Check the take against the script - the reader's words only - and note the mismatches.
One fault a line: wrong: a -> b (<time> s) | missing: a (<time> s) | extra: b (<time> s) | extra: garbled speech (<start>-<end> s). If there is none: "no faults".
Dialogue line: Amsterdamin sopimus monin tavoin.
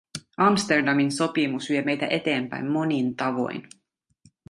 extra: vie meitä eteenpäin (1.7 s)